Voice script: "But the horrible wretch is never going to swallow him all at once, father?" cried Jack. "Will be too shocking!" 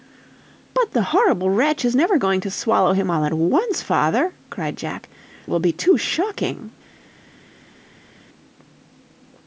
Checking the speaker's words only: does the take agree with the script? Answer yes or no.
yes